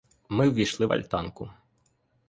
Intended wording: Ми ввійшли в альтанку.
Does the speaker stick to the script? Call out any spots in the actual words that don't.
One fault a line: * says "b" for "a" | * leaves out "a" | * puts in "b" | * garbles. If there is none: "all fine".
all fine